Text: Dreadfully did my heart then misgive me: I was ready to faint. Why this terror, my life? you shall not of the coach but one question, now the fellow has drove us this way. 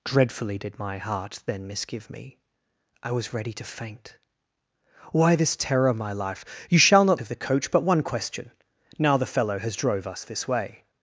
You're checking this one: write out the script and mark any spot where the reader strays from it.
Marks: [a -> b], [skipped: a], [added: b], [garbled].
Dreadfully did my heart then misgive me: I was ready to faint. Why this terror, my life? you shall not of the coach but one question, now the fellow has drove us this way.